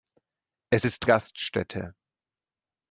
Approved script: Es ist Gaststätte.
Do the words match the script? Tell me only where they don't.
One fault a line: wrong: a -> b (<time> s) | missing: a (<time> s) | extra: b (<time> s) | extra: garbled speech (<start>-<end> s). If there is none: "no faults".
no faults